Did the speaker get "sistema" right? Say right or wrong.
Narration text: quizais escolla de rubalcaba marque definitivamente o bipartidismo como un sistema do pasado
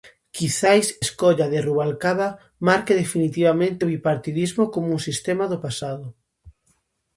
right